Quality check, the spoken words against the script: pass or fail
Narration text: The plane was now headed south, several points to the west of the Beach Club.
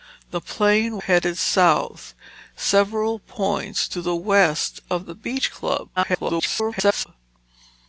fail